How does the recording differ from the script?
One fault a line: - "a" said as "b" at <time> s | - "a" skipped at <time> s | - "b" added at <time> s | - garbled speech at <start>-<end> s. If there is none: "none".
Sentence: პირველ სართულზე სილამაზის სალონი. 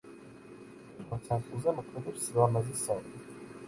- "მოქმედებს" added at 1.8 s